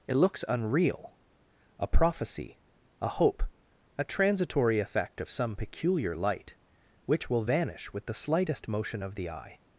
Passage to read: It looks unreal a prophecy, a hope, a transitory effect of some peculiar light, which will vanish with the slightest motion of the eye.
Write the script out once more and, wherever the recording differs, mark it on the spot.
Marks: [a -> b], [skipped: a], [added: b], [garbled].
It looks unreal a prophecy, a hope, a transitory effect of some peculiar light, which will vanish with the slightest motion of the eye.